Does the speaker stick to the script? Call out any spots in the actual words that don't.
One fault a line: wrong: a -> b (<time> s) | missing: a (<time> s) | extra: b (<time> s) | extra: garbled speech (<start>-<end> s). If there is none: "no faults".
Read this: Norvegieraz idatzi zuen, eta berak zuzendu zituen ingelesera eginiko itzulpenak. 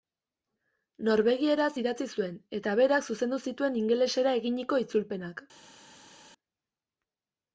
no faults